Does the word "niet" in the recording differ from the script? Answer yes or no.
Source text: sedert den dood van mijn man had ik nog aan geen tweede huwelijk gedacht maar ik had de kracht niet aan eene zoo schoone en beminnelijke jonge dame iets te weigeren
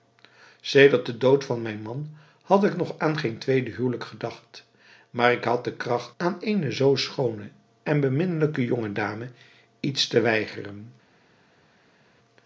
yes